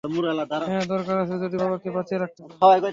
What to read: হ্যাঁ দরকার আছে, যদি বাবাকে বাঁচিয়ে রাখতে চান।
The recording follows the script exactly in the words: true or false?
true